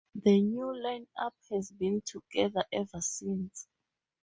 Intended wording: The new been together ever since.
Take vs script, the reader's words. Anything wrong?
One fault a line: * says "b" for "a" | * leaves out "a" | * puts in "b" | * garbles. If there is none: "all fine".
* puts in "line up has"